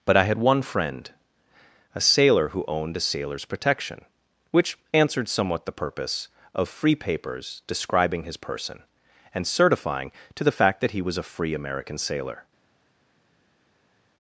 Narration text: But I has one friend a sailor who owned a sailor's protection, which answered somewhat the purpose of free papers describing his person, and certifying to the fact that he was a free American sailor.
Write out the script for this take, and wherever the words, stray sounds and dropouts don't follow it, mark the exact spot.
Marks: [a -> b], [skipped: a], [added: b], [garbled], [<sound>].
But I [has -> had] one friend a sailor who owned a sailor's protection, which answered somewhat the purpose of free papers describing his person, and certifying to the fact that he was a free American sailor.